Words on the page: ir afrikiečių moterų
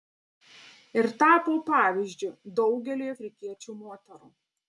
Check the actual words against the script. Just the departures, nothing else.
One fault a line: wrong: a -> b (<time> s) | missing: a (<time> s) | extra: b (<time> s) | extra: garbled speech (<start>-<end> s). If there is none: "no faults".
extra: tapo pavyzdžiu daugeliui (1.2 s)